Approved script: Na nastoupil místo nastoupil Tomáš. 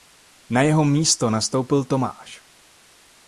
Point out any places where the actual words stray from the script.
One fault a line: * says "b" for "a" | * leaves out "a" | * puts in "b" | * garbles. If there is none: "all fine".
* says "jeho" for "nastoupil"